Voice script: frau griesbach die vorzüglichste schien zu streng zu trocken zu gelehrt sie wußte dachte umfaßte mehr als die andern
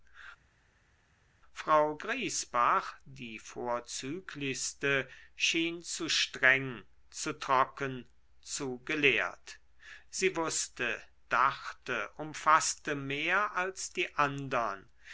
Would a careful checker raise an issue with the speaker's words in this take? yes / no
no